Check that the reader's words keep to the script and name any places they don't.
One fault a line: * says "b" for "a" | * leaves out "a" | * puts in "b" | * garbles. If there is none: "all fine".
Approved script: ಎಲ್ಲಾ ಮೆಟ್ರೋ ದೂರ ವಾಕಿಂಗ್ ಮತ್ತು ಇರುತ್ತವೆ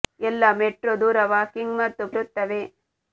all fine